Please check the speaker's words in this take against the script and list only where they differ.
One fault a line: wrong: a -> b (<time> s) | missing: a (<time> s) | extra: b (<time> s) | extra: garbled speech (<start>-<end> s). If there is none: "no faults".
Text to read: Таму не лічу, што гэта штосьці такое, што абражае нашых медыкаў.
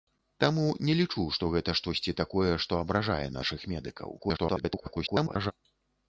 extra: garbled speech (4.2-5.5 s)